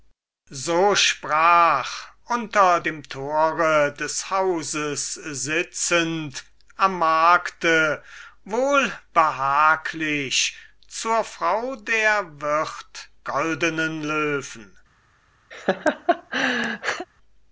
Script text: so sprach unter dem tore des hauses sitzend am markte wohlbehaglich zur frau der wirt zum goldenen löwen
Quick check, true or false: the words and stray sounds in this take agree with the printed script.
false